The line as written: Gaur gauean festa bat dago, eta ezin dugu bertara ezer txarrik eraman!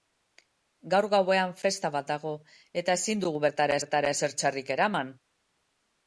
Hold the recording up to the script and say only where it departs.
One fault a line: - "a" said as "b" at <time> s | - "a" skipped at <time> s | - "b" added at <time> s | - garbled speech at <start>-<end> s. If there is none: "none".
- "bertara" added at 3.8 s